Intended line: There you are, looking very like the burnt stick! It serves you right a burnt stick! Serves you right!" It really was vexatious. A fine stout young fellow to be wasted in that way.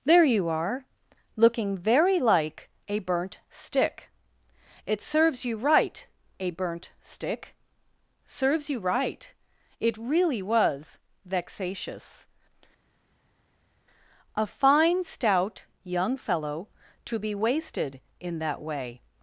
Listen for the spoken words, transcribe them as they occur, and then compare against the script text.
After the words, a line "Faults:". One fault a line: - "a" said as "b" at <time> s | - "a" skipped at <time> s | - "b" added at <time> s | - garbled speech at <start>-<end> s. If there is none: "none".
There you are, looking very like a burnt stick! It serves you right a burnt stick! Serves you right!" It really was vexatious. A fine stout young fellow to be wasted in that way.
Faults:
- "the" said as "a" at 2.9 s